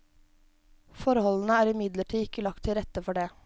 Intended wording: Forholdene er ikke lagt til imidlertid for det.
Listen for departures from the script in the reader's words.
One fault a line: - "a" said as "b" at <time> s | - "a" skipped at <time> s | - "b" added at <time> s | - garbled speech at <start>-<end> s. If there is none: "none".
- "imidlertid" added at 1.7 s
- "imidlertid" said as "rette" at 2.8 s